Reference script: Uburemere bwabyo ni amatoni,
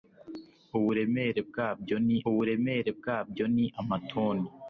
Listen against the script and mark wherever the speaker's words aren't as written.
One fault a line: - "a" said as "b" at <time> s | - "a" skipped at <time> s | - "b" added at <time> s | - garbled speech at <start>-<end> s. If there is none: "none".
- "uburemere bwabyo ni" added at 2.3 s